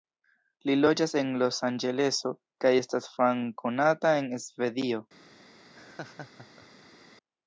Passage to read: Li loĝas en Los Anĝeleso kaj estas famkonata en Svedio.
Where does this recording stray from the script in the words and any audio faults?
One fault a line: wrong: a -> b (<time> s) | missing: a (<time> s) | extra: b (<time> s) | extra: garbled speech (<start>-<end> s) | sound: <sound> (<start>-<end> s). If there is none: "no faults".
sound: laugh (5.7-7.1 s)